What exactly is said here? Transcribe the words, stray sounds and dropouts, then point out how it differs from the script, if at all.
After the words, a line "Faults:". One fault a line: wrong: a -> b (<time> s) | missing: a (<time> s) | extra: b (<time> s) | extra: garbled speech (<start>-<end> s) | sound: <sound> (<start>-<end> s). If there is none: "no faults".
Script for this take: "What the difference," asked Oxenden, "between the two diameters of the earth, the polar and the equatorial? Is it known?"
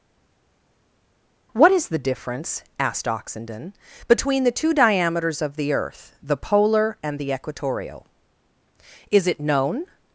"What is the difference," asked Oxenden, "between the two diameters of the earth, the polar and the equatorial? Is it known?"
Faults:
extra: is (1.7 s)